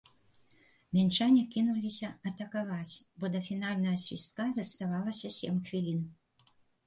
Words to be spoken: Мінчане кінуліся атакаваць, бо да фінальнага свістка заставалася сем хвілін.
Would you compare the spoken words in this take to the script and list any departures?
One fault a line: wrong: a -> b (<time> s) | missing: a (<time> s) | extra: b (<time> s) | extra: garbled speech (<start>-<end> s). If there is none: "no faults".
no faults